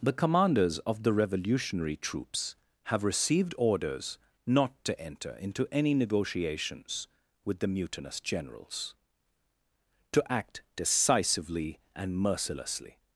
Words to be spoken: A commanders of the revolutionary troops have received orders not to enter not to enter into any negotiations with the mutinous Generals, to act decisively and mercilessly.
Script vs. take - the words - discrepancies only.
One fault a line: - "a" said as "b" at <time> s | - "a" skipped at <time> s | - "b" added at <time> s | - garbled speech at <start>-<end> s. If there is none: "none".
- "A" said as "The" at 0.0 s
- "not to enter" skipped at 5.3 s